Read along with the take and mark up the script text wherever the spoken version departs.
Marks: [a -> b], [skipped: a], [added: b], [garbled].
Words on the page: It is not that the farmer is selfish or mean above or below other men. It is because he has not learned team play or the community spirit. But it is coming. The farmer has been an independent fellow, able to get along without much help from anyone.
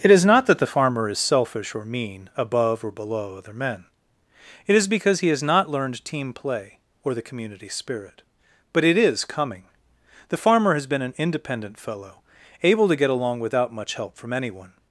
It is not that the farmer is selfish or mean above or below other men. It is because he has not learned team play or the community spirit. But it is coming. The farmer has been an independent fellow, able to get along without much help from anyone.